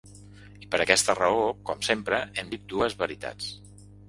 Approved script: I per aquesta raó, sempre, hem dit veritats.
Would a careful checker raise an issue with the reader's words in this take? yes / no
yes